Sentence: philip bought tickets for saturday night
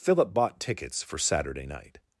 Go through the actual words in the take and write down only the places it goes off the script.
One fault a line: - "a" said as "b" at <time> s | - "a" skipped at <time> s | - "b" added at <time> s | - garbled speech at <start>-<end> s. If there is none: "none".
none